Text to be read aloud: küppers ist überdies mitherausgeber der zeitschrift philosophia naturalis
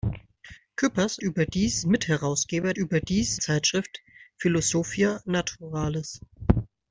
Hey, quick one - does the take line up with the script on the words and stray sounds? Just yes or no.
no